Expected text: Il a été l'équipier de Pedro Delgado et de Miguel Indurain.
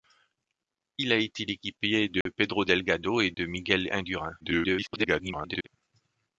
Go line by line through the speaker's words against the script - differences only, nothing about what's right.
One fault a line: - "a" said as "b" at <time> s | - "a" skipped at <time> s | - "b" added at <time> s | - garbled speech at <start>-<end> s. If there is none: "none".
- garbled speech at 4.4-5.7 s